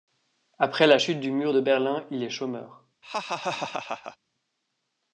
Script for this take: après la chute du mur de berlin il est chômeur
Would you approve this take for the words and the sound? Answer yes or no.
no